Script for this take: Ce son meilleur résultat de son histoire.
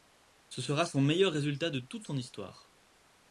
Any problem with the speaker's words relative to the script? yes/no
yes